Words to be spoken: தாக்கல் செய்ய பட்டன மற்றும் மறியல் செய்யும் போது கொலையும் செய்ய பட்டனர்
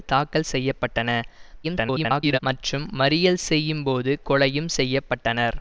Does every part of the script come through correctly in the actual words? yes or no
no